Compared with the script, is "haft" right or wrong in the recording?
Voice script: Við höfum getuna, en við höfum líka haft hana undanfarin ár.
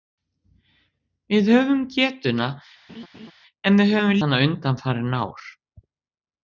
wrong